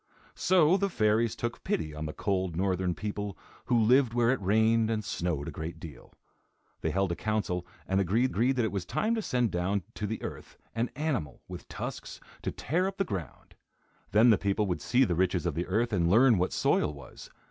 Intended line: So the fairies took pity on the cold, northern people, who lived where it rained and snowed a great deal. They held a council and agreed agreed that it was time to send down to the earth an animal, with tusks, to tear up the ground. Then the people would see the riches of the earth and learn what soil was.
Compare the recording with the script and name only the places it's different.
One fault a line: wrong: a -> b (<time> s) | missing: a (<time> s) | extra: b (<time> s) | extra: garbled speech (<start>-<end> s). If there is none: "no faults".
no faults